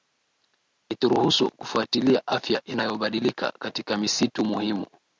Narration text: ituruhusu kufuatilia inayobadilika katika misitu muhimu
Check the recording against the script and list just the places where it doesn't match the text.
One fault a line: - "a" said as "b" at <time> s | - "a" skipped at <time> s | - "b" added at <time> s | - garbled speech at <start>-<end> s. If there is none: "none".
- "afya" added at 2.3 s